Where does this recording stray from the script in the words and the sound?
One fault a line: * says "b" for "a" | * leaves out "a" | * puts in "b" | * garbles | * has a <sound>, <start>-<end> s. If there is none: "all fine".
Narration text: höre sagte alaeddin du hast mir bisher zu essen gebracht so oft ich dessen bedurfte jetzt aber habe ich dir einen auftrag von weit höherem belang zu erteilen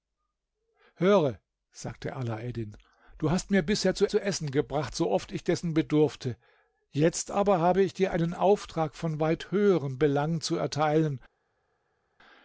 * puts in "zu"